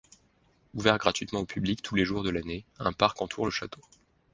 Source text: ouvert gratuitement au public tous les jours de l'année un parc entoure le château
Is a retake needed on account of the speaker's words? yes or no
no